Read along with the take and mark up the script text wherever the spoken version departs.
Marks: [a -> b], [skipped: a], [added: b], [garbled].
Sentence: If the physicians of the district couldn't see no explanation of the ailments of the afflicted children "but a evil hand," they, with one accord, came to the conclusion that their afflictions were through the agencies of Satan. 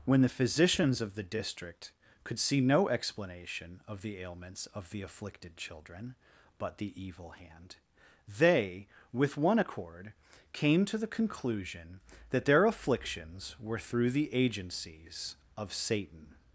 [If -> When] the physicians of the district [couldn't -> could] see no explanation of the ailments of the afflicted children "but [a -> the] evil hand," they, with one accord, came to the conclusion that their afflictions were through the agencies of Satan.